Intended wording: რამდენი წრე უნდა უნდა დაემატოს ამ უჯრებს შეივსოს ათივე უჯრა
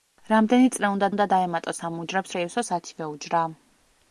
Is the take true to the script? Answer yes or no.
yes